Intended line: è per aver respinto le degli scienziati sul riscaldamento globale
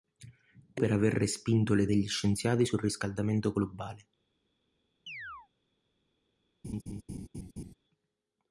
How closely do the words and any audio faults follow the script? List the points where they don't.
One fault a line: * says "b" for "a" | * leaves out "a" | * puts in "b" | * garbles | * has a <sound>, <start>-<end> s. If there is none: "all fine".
* has a chirp, 5.1-5.5 s
* has a laugh, 6.6-7.7 s